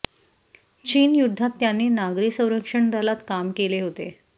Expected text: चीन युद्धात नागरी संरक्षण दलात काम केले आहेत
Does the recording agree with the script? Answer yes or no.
no